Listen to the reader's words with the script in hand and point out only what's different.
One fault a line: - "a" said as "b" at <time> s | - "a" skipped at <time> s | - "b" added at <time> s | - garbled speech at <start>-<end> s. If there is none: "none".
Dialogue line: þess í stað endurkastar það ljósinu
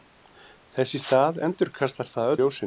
none